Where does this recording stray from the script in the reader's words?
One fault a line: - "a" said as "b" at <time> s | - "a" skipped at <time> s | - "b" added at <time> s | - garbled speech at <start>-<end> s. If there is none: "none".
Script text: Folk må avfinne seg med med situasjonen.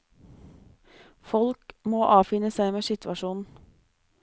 - "med" skipped at 2.9 s